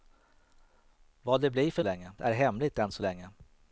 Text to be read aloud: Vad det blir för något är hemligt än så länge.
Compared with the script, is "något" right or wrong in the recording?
wrong